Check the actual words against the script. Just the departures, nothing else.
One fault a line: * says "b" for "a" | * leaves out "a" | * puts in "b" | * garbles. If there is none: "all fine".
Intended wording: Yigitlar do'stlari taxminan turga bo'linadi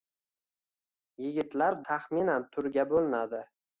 * leaves out "do'stlari"